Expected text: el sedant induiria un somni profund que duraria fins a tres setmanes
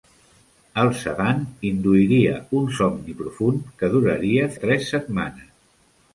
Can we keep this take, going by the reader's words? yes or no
no